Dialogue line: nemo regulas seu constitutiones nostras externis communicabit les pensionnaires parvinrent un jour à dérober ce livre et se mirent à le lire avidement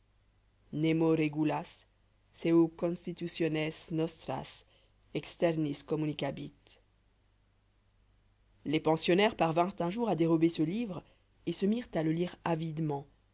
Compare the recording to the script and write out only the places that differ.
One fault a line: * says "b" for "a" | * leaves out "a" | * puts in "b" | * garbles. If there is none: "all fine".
all fine